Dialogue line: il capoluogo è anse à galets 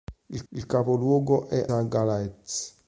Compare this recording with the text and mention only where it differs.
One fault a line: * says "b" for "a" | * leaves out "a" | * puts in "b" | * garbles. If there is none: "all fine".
* puts in "il"
* leaves out "anse"